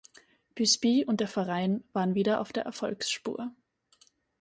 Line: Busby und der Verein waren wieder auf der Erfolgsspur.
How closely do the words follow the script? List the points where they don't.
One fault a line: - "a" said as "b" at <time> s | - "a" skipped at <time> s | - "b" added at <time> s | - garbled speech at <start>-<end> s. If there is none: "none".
none